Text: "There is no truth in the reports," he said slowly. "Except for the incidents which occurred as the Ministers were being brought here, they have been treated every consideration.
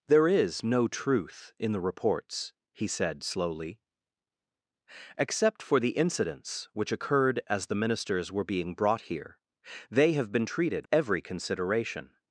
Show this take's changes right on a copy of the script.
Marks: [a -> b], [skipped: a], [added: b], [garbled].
"There is no truth in the reports," he said slowly. "Except for the incidents which occurred as the Ministers were being brought here, they have been treated every consideration.